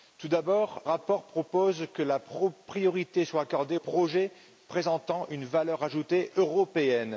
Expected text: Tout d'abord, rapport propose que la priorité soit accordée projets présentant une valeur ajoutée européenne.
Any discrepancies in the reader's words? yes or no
no